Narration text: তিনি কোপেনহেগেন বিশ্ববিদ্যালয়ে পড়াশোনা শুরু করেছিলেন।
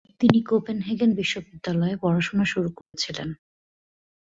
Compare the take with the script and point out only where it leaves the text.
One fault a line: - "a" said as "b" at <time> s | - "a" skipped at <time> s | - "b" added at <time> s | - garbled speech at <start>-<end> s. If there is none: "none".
none